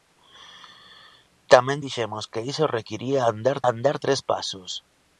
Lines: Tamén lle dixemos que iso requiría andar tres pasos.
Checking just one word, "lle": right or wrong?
wrong